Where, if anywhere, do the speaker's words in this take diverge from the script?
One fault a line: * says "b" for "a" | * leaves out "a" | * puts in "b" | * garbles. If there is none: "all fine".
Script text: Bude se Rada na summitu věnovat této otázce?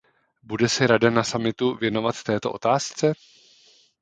all fine